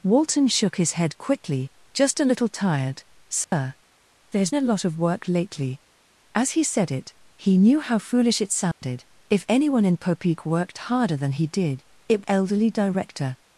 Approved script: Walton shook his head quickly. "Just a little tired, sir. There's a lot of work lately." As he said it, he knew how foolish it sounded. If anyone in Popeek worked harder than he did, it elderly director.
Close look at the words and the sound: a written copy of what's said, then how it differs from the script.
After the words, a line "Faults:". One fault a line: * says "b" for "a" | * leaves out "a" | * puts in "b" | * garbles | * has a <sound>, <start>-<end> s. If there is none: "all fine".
Walton shook his head quickly. "Just a little tired, sir. There's a lot of work lately." As he said it, he knew how foolish it sounded. If anyone in Popeek worked harder than he did, it elderly director.
Faults:
* has a dropout, 3.4-3.5 s
* has a dropout, 8.7-8.8 s